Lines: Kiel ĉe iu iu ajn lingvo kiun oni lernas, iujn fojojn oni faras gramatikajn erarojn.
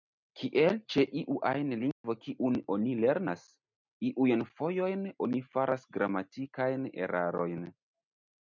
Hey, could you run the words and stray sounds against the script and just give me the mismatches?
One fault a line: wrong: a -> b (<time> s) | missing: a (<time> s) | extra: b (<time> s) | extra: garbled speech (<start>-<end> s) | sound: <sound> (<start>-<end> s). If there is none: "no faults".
missing: iu (1.4 s)
sound: dropout (1.9-2.0 s)